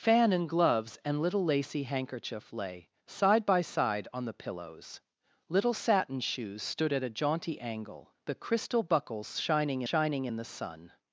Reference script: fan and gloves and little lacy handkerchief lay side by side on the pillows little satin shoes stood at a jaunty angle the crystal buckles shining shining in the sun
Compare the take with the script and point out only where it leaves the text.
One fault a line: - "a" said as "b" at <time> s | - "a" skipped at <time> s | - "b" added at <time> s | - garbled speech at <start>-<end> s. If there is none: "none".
none